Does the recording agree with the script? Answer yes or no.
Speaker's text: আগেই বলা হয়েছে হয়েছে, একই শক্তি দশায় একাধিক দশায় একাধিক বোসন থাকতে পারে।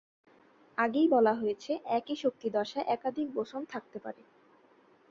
no